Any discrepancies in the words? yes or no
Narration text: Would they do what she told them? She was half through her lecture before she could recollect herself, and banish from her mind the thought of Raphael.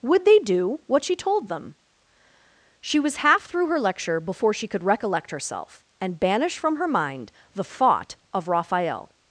no